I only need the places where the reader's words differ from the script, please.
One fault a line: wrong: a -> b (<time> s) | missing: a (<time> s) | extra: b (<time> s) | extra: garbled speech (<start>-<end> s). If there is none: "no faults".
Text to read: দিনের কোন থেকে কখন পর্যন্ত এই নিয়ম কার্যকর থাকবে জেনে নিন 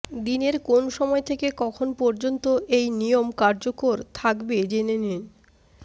extra: সময় (0.9 s)